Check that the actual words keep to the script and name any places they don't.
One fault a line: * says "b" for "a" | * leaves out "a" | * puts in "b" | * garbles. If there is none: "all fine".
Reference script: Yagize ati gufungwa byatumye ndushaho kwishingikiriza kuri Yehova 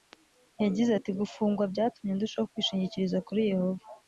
all fine